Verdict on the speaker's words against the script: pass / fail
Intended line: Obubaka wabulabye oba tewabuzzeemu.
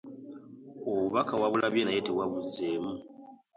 fail